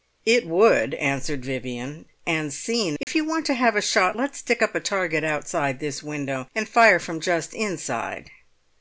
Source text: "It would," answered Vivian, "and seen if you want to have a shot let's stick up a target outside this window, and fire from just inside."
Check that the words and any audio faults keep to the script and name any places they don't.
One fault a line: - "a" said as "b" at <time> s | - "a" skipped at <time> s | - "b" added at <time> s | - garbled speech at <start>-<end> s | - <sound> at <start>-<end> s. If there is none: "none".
- dropout at 3.0-3.1 s